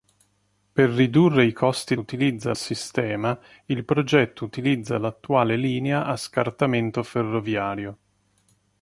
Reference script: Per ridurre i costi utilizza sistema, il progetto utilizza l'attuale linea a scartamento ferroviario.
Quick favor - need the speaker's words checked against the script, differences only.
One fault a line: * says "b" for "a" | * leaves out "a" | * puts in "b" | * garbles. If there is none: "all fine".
all fine